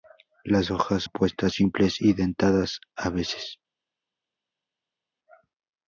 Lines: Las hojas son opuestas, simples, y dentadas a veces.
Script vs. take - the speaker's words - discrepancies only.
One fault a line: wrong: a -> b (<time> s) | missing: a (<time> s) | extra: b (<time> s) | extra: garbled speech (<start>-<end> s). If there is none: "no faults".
missing: son (1.0 s)